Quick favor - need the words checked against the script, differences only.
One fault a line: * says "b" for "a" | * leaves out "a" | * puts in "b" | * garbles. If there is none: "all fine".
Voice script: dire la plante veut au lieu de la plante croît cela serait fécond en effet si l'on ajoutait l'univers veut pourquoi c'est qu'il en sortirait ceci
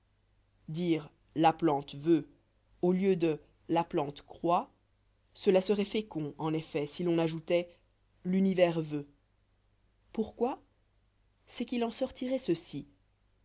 all fine